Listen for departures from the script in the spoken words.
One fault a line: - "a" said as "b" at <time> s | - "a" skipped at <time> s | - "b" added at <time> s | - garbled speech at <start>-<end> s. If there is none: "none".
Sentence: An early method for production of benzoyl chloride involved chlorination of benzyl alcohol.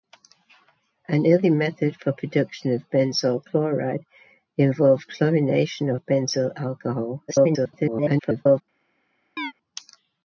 - garbled speech at 7.3-8.6 s